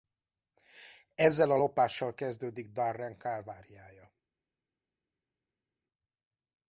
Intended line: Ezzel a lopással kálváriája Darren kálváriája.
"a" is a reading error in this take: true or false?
false